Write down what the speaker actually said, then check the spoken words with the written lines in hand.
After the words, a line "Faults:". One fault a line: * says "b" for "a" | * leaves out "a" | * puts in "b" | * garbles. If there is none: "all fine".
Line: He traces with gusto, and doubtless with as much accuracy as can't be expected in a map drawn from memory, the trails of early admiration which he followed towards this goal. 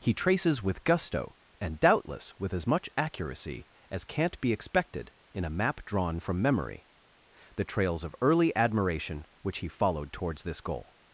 He traces with gusto, and doubtless with as much accuracy as can't be expected in a map drawn from memory, the trails of early admiration which he followed towards this goal.
Faults:
all fine